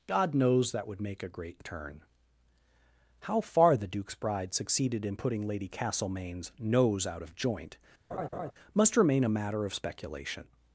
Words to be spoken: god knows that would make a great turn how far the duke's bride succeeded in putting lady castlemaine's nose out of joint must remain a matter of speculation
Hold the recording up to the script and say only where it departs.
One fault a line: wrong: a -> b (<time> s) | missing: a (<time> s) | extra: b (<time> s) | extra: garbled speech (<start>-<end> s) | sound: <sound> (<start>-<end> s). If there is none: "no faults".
sound: laugh (8.1-8.5 s)